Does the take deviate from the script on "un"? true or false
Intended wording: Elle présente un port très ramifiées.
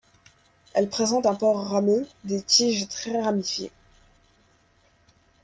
false